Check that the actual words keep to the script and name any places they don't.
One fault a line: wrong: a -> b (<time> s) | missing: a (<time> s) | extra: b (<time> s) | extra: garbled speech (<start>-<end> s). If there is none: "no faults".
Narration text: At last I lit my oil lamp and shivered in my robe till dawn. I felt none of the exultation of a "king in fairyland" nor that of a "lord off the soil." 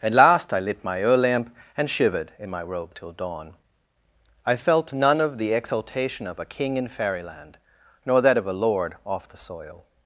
no faults